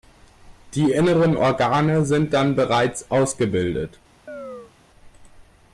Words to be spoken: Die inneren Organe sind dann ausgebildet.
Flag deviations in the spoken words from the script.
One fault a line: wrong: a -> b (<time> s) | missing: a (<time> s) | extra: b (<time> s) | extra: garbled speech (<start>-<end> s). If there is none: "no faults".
extra: bereits (2.5 s)